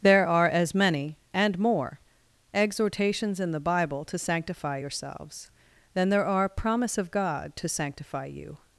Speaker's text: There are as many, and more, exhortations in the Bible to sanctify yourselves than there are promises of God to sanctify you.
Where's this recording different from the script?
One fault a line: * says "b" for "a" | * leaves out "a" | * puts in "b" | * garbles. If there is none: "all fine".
* says "promise" for "promises"